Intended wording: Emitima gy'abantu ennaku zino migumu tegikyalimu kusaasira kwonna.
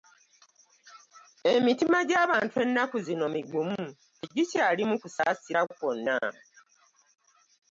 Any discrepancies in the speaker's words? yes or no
no